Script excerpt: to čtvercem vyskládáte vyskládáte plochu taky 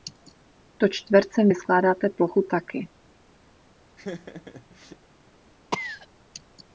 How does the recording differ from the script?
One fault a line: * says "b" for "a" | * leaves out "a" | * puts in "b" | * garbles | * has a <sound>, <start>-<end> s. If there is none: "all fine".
* leaves out "vyskládáte"
* has a laugh, 4.0-5.0 s
* has a cough, 5.7-6.1 s